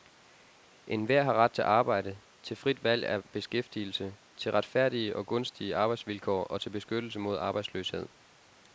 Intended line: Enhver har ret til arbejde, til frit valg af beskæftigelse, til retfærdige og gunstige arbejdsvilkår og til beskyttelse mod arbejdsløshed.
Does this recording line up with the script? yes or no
yes